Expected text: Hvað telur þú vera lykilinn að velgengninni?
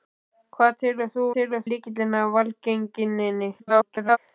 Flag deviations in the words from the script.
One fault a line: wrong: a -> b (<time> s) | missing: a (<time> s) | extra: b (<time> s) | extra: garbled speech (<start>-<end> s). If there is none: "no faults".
wrong: vera -> telur (1.4 s)
extra: garbled speech (3.6-4.2 s)